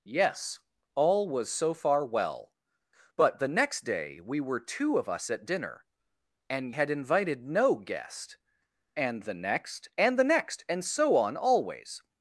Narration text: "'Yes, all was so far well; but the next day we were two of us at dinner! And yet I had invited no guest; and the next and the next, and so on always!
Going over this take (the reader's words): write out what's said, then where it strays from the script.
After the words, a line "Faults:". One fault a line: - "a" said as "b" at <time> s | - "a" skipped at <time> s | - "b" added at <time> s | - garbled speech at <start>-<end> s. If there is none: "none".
"'Yes, all was so far well; but the next day we were two of us at dinner! And had invited no guest; and the next and the next, and so on always!
Faults:
- "yet I" skipped at 6.7 s